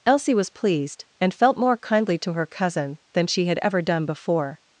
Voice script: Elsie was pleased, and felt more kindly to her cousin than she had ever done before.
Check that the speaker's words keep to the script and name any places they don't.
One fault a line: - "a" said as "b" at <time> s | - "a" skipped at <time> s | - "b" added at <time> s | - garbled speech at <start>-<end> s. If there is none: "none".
none